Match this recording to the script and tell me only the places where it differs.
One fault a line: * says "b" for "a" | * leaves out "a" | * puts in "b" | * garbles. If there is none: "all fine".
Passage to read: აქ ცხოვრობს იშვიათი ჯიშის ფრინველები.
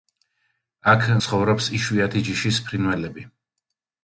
all fine